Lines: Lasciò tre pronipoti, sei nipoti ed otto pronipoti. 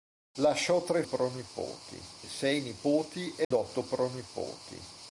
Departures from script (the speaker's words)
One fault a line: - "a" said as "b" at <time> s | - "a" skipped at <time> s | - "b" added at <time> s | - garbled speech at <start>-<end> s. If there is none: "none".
none